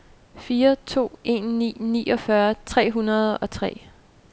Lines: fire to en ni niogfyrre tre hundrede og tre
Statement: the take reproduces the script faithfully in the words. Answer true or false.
true